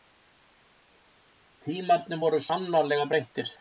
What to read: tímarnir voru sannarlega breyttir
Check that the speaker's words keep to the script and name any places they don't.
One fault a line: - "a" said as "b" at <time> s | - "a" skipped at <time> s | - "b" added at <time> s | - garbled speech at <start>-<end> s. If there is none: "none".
none